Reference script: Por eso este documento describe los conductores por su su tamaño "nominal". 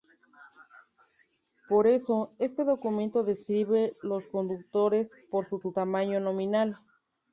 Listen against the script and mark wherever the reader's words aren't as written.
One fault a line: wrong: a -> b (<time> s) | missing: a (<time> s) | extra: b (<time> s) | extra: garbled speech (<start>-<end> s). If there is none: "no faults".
no faults